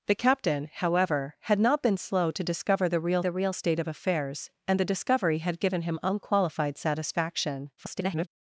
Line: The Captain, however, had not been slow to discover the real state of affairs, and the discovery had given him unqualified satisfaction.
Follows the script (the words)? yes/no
no